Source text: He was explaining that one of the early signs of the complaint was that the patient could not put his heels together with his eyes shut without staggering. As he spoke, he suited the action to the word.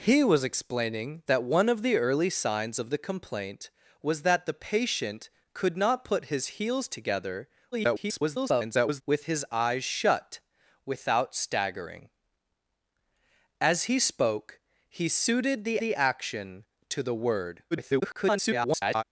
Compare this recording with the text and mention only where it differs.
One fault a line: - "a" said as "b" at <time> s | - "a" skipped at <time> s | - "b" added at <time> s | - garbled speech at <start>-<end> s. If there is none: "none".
- garbled speech at 7.7-9.0 s
- "the" added at 15.8 s
- garbled speech at 17.7-19.0 s